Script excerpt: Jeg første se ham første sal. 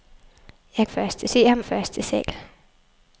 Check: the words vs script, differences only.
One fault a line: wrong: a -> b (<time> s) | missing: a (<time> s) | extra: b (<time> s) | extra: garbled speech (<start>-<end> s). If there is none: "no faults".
no faults